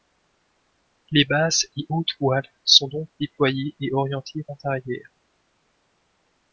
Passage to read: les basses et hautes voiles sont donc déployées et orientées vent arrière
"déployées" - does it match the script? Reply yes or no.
yes